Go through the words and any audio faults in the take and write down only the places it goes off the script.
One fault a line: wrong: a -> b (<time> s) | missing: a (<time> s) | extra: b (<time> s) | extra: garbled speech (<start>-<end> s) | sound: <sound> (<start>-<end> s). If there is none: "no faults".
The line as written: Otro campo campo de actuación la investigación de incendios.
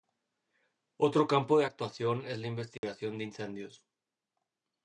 missing: campo (1.6 s)
extra: es (2.2 s)
sound: dropout (2.8-2.8 s)